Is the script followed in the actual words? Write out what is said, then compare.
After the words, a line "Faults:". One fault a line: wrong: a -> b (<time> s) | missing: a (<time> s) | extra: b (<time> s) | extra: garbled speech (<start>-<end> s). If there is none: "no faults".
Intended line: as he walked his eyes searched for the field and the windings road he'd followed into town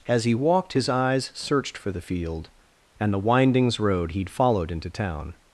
as he walked his eyes searched for the field and the windings road he'd followed into town
Faults:
no faults